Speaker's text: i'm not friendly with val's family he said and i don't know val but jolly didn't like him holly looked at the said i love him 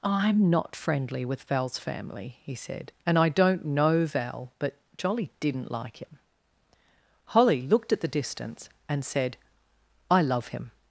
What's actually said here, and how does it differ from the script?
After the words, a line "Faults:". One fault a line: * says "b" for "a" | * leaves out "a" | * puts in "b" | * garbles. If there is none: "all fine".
i'm not friendly with val's family he said and i don't know val but jolly didn't like him holly looked at the distance and said i love him
Faults:
* puts in "distance and"